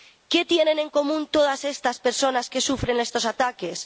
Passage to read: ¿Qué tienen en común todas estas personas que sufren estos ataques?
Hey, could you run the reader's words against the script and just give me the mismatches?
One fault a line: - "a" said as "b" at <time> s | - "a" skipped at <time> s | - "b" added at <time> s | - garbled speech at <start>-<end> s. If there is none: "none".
none